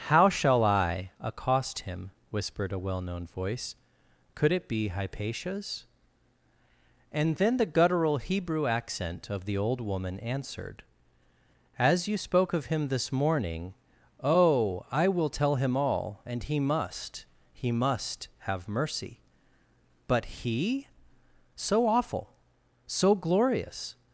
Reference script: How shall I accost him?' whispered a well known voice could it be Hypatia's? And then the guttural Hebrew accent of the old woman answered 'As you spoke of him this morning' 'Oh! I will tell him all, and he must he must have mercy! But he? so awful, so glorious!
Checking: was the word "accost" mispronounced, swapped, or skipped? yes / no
no